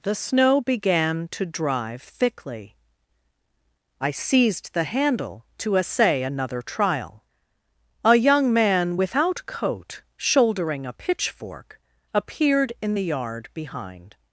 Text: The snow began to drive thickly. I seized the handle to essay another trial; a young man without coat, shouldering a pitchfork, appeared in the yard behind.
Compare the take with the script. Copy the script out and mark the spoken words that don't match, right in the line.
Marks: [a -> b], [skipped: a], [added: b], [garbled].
The snow began to drive thickly. I seized the handle to essay another trial; a young man without coat, shouldering a pitchfork, appeared in the yard behind.